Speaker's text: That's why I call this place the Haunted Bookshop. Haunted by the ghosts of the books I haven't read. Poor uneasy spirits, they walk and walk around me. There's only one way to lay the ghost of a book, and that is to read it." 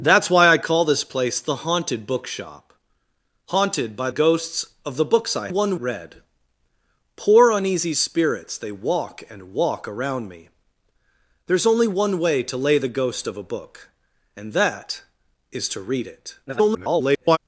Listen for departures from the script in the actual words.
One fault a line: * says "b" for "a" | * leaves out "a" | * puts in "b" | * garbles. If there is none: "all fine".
* leaves out "the"
* says "one" for "haven't"
* garbles